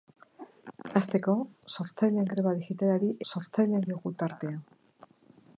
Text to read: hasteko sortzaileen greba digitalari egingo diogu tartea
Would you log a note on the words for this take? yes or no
yes